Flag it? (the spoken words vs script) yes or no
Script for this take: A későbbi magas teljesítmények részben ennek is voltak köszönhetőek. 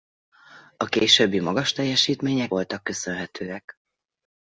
yes